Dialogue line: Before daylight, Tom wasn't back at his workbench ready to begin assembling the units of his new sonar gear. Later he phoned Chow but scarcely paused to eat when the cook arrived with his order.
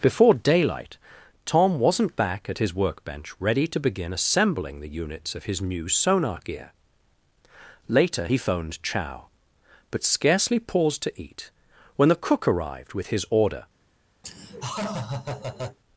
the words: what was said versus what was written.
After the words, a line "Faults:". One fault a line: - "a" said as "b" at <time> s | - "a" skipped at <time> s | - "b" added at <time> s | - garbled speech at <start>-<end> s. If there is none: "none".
Before daylight, Tom wasn't back at his workbench ready to begin assembling the units of his new sonar gear. Later he phoned Chow but scarcely paused to eat when the cook arrived with his order.
Faults:
none